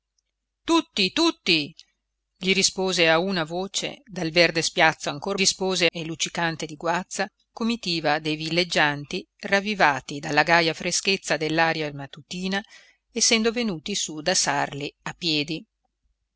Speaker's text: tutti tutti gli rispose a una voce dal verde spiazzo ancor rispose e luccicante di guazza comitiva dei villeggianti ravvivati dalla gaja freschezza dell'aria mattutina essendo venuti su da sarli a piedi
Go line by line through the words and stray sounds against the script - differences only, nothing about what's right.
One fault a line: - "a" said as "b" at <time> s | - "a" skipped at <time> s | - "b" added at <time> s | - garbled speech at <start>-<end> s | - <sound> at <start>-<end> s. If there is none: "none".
none